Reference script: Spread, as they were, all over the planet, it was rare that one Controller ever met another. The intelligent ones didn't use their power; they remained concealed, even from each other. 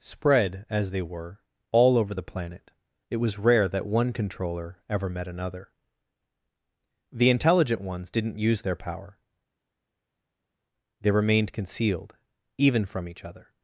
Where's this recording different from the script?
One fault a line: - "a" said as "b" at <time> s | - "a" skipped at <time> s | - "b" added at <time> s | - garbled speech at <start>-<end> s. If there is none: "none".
none